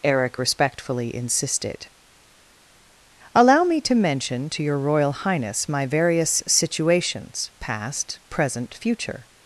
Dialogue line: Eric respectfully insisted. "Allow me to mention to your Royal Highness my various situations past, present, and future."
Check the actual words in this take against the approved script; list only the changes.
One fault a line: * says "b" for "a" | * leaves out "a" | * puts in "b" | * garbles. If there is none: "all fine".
* leaves out "and"